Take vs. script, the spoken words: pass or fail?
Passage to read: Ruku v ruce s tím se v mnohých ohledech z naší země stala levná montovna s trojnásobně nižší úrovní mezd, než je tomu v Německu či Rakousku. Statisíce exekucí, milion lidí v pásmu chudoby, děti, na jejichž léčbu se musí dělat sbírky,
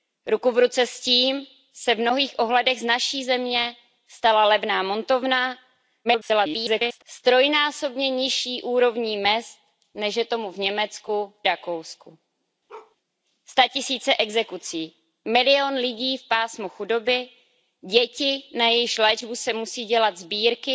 fail